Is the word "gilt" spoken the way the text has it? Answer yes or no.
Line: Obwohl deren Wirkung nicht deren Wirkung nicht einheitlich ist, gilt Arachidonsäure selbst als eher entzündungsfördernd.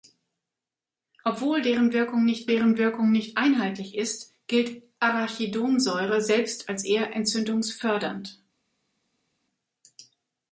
yes